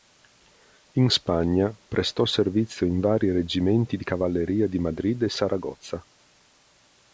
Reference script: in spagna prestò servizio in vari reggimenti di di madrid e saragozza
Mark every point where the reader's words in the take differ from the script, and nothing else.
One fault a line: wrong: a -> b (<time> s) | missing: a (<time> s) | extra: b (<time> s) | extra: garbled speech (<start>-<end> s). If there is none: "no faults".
extra: cavalleria (4.0 s)